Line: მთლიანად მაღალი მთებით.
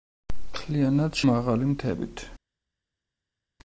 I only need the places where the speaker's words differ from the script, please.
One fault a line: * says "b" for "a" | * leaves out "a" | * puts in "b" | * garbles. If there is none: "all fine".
all fine